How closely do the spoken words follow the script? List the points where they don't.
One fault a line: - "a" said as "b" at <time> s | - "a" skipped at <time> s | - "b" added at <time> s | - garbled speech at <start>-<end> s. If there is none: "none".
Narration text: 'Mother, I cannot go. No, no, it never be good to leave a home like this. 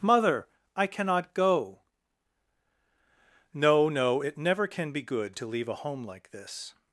- "can" added at 4.7 s